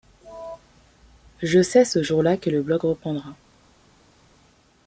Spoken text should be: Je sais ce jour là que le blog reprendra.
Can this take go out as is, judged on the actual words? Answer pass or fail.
pass